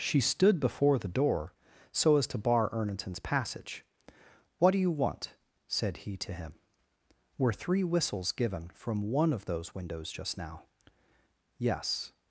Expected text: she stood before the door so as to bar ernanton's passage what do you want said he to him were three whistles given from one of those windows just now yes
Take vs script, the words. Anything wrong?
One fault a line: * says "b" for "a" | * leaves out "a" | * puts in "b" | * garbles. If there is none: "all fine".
all fine